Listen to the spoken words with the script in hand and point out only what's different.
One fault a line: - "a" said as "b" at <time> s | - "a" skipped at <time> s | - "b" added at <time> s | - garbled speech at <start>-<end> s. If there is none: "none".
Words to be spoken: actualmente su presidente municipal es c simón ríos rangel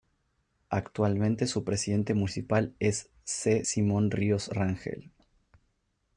none